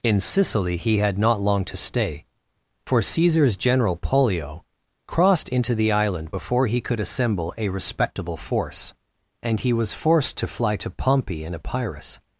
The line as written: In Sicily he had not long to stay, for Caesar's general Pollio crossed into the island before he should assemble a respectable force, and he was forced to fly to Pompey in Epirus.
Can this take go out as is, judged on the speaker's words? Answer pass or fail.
fail